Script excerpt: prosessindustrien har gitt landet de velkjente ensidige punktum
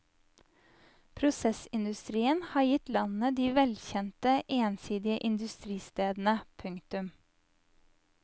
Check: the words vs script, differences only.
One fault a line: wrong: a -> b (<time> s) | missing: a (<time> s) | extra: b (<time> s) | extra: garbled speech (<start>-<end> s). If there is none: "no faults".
extra: industristedene (5.3 s)